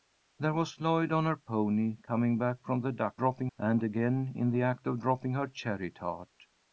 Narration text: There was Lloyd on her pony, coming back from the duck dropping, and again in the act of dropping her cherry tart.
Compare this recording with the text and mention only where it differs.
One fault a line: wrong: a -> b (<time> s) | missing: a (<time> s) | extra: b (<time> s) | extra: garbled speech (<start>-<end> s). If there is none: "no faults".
no faults